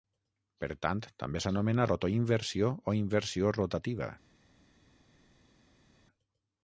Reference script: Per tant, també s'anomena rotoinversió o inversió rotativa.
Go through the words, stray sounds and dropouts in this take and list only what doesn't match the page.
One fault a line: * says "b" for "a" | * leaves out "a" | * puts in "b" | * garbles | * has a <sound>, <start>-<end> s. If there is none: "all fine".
all fine